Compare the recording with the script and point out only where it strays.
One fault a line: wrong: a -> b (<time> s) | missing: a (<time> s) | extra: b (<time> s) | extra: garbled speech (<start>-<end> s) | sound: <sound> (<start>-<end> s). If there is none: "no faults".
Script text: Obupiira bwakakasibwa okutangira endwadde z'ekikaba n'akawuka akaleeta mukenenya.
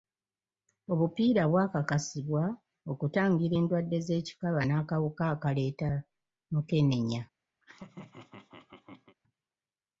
sound: laugh (7.6-9.2 s)